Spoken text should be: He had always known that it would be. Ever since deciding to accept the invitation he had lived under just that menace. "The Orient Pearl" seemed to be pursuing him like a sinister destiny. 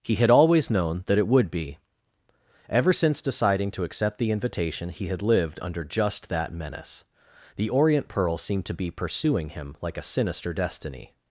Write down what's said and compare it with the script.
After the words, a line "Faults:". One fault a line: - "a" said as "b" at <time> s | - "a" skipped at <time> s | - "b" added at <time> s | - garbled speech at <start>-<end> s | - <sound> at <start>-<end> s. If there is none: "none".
He had always known that it would be. Ever since deciding to accept the invitation he had lived under just that menace. "The Orient Pearl" seemed to be pursuing him like a sinister destiny.
Faults:
none